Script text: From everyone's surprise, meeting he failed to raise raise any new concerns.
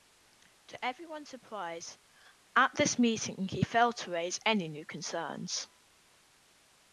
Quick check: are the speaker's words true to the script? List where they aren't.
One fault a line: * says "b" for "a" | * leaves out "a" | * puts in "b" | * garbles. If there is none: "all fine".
* says "To" for "From"
* puts in "at this"
* leaves out "raise"